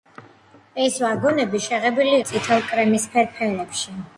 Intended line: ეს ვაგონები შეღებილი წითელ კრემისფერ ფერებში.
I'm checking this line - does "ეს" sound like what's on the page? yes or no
yes